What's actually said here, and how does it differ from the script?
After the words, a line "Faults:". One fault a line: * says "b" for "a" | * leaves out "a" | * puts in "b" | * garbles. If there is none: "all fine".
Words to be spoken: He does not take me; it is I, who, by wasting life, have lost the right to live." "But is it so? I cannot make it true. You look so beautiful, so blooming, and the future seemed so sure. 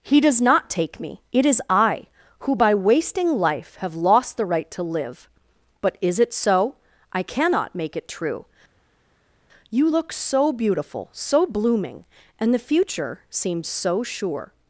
He does not take me; it is I, who, by wasting life, have lost the right to live." "But is it so? I cannot make it true. You look so beautiful, so blooming, and the future seems so sure.
Faults:
* says "seems" for "seemed"